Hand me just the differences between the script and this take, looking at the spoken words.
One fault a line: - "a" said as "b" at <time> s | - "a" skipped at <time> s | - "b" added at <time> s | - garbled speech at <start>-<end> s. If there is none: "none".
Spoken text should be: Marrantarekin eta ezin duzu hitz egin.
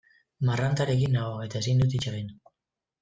- "nago" added at 1.2 s
- "duzu" said as "dut" at 1.9 s